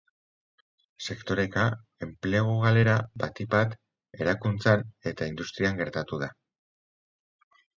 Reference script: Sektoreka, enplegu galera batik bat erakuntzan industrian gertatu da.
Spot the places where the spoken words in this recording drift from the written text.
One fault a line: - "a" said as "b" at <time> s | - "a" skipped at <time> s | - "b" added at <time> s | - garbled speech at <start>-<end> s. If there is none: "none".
- "eta" added at 5.1 s